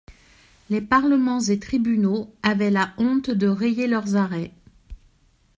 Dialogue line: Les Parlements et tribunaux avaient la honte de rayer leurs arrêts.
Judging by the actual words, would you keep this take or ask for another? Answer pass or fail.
pass